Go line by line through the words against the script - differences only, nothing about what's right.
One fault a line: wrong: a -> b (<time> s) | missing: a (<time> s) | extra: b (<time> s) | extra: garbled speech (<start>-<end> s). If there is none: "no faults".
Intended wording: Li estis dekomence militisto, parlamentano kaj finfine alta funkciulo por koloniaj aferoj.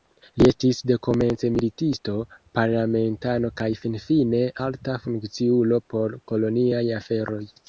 no faults